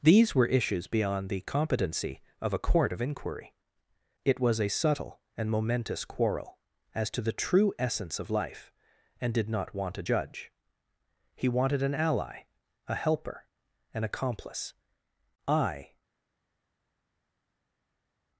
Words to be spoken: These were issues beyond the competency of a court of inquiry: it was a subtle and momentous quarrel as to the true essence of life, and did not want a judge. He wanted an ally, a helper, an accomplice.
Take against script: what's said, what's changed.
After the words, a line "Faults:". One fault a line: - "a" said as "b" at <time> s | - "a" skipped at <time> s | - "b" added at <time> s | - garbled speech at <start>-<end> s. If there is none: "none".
These were issues beyond the competency of a court of inquiry: it was a subtle and momentous quarrel as to the true essence of life, and did not want a judge. He wanted an ally, a helper, an accomplice. I
Faults:
- "I" added at 15.5 s